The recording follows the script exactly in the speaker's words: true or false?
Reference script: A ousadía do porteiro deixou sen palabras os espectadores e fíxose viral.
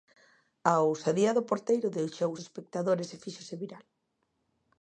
false